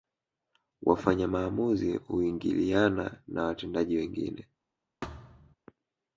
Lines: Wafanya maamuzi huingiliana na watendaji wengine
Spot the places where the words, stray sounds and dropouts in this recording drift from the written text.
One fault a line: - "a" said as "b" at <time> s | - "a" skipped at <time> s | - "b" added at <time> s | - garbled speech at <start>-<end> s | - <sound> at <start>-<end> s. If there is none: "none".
- thud at 5.0-5.6 s